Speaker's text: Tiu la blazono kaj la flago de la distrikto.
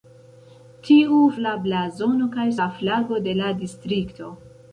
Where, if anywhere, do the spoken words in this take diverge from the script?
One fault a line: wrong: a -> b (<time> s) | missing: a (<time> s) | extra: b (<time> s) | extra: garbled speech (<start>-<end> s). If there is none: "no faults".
no faults